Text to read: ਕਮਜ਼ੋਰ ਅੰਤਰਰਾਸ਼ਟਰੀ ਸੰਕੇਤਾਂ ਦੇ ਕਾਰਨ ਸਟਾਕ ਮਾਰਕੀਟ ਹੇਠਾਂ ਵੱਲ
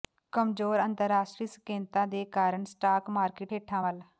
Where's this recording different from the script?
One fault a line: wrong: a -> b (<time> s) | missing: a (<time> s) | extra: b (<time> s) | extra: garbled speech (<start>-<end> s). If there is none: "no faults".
no faults